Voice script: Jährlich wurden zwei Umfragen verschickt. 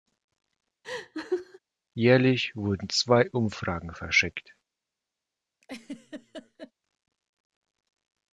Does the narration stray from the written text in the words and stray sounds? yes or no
yes